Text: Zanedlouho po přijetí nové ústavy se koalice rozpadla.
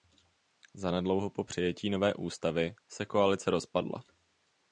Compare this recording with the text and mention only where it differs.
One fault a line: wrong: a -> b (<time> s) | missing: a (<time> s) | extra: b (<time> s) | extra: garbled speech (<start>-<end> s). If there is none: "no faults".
no faults